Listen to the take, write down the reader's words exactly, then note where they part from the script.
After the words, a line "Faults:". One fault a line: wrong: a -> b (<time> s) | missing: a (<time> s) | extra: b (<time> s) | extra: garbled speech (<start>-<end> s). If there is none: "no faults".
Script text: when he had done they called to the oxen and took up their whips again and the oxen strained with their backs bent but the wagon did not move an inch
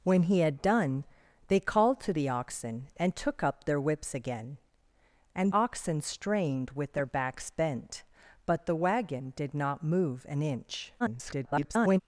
when he had done they called to the oxen and took up their whips again and oxen strained with their backs bent but the wagon did not move an inch [garbled]
Faults:
missing: the (5.5 s)
extra: garbled speech (11.0-12.0 s)